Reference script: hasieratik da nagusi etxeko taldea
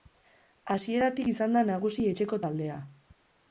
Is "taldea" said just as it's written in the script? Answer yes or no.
yes